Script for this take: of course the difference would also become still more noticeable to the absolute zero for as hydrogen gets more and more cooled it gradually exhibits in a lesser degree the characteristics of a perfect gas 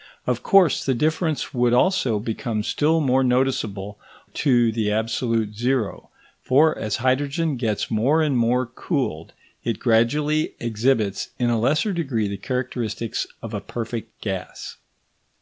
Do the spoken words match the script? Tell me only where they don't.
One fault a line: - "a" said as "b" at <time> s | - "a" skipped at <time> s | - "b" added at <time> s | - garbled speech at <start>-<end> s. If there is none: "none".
none